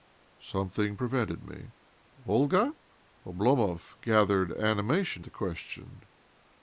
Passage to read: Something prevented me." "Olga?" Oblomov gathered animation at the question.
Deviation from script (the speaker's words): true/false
true